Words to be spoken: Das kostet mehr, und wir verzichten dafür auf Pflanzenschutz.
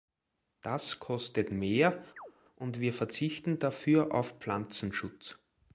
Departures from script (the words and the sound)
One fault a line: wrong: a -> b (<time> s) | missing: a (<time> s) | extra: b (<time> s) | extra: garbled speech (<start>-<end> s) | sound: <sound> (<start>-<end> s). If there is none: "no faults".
sound: chirp (2.2-2.3 s)